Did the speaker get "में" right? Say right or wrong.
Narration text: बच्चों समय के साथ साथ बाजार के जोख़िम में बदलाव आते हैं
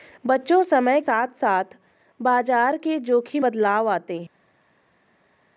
wrong